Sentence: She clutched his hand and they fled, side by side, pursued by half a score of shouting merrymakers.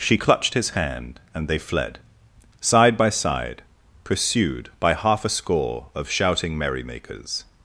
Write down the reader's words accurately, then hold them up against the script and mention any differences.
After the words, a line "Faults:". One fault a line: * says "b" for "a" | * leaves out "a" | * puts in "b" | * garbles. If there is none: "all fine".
She clutched his hand and they fled, side by side, pursued by half a score of shouting merrymakers.
Faults:
all fine